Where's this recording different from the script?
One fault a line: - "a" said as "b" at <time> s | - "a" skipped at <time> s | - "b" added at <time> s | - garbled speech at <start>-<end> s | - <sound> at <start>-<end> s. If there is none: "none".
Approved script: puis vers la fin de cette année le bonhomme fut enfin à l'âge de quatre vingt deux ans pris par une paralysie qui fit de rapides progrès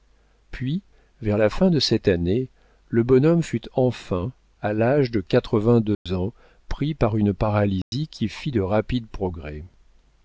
- dropout at 5.9-6.1 s
- dropout at 7.8-7.9 s